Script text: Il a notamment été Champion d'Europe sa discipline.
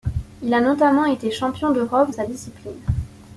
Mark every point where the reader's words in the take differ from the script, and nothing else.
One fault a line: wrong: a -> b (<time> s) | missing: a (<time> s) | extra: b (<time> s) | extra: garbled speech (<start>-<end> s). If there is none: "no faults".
no faults